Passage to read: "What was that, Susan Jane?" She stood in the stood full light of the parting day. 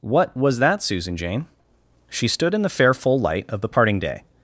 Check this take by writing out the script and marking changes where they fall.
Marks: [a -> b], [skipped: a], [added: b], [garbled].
"What was that, Susan Jane?" She stood in the [stood -> fair] full light of the parting day.